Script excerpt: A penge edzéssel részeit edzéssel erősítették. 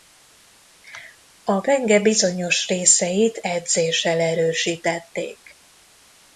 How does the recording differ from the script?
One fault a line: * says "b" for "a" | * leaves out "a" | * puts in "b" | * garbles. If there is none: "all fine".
* says "bizonyos" for "edzéssel"